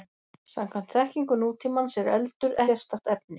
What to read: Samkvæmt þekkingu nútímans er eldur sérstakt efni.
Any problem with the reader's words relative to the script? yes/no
no